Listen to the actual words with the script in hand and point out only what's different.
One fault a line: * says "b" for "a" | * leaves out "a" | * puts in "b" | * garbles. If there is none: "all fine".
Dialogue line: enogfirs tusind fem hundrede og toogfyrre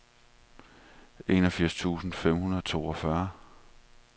all fine